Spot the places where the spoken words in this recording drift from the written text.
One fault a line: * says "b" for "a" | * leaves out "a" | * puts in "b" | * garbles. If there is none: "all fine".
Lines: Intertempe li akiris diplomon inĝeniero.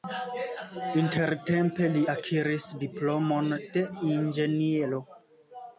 * puts in "de"